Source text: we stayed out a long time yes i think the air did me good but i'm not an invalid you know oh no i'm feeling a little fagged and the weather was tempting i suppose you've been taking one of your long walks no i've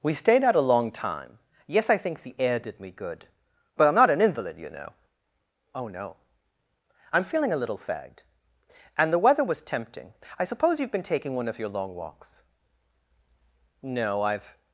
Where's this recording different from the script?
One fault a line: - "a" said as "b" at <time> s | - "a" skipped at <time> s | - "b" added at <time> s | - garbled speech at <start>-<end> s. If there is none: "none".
none